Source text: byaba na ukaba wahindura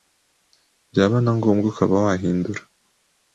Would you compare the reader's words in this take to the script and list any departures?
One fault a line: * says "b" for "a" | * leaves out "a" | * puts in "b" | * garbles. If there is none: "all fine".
* puts in "ngombwa"